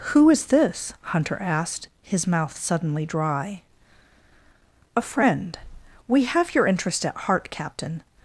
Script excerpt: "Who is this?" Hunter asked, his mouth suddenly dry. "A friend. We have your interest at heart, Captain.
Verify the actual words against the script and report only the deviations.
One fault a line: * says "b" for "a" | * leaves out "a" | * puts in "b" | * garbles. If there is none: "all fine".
all fine